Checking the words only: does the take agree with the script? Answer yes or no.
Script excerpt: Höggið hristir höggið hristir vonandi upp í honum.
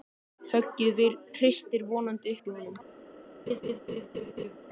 no